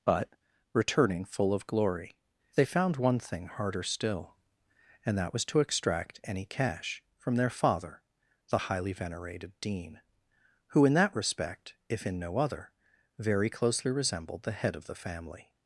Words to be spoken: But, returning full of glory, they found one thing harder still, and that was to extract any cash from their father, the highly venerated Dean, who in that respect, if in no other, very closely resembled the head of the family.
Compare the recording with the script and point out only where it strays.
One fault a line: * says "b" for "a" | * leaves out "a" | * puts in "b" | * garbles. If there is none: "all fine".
all fine